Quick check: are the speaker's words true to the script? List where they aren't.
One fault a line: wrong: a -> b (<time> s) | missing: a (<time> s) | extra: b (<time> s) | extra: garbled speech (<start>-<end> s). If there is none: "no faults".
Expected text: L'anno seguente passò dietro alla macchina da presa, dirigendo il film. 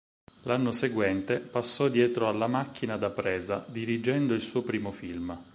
extra: suo primo (4.4 s)